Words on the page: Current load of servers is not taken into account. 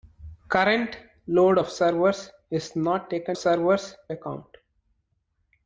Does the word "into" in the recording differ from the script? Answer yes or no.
yes